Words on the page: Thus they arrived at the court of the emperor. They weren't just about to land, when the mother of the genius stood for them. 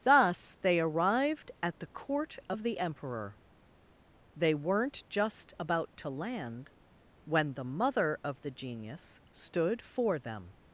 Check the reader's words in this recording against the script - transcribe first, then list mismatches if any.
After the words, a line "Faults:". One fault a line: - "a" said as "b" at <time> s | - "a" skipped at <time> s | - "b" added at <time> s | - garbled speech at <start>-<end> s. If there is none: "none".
Thus they arrived at the court of the emperor. They weren't just about to land, when the mother of the genius stood for them.
Faults:
none